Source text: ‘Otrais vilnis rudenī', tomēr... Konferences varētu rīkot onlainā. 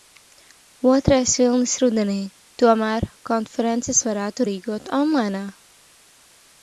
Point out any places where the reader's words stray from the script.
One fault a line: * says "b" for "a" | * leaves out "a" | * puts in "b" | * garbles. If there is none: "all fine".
all fine